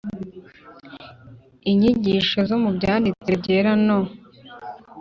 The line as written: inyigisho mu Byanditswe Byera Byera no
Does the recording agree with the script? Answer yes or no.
no